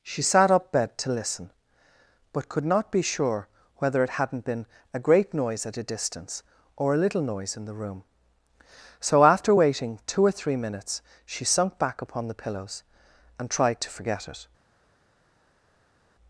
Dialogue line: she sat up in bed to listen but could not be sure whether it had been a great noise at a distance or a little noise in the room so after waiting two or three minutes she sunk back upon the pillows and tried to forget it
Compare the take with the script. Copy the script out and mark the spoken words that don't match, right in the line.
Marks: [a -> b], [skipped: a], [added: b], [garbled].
she sat up [skipped: in] bed to listen but could not be sure whether it [had -> hadn't] been a great noise at a distance or a little noise in the room so after waiting two or three minutes she sunk back upon the pillows and tried to forget it